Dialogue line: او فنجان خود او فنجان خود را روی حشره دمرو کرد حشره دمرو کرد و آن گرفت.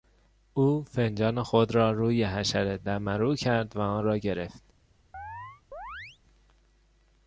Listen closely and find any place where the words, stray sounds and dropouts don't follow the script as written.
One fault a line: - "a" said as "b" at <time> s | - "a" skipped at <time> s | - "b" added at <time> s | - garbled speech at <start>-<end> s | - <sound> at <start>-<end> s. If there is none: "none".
- "او فنجان خود" skipped at 1.8 s
- "حشره دمرو کرد" skipped at 3.8 s
- "را" added at 4.0 s
- chirp at 5.1-6.2 s